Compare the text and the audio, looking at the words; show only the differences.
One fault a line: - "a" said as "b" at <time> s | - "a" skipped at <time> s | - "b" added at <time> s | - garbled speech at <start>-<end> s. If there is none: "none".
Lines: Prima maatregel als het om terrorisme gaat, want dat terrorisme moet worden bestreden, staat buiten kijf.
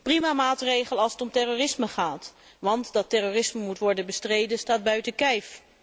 none